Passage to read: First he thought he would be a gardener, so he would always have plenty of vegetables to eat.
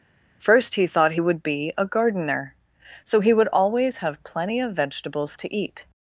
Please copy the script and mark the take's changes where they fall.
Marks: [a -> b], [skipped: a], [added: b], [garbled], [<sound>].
First he thought he would be a gardener, so he would always have plenty of vegetables to eat.